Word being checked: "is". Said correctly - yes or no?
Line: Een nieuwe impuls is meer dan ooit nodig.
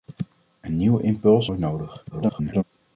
no